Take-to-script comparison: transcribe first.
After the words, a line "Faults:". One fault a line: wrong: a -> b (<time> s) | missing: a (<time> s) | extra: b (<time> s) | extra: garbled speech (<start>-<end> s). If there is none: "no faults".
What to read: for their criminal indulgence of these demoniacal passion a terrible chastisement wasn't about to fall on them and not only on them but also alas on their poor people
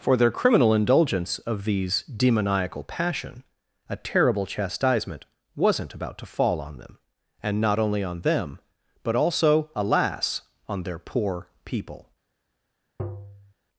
for their criminal indulgence of these demoniacal passion a terrible chastisement wasn't about to fall on them and not only on them but also alas on their poor people
Faults:
no faults